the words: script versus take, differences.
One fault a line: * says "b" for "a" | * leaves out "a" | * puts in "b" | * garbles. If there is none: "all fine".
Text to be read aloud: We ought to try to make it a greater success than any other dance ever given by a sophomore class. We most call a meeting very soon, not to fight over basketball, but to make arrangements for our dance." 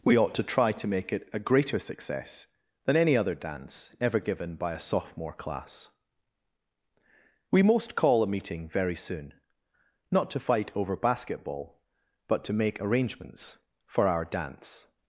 all fine